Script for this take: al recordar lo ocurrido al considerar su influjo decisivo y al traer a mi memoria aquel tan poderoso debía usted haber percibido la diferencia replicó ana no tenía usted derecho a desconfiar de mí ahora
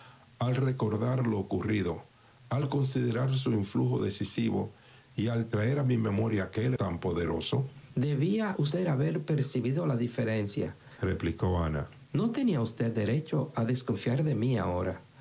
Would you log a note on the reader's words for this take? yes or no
no